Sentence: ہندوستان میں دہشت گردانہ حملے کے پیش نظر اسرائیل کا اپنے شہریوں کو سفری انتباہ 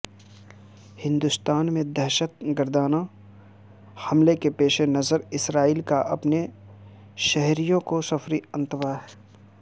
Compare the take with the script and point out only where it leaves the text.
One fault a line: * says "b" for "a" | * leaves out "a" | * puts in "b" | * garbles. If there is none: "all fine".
all fine